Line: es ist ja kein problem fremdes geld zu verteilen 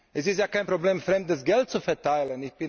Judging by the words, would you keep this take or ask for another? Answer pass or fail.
pass